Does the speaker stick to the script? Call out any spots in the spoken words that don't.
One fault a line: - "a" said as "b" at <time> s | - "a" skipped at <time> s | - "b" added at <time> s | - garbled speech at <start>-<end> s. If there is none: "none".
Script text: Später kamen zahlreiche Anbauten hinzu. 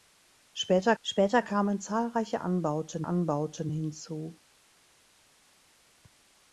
- "später" added at 1.0 s
- "Anbauten" added at 3.0 s